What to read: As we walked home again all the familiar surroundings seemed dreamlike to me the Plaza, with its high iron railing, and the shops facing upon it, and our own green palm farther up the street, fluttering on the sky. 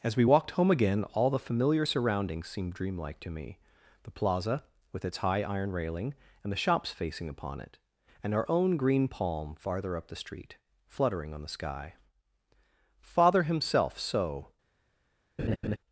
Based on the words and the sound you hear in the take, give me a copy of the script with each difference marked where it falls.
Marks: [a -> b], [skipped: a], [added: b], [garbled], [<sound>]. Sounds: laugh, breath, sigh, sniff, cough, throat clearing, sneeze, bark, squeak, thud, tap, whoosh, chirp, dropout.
As we walked home again all the familiar surroundings seemed dreamlike to me the Plaza, with its high iron railing, and the shops facing upon it, and our own green palm farther up the street, fluttering on the sky. [added: Father himself so] [laugh]